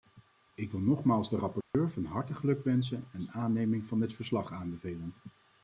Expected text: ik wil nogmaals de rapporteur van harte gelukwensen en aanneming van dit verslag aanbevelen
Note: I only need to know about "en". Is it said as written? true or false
true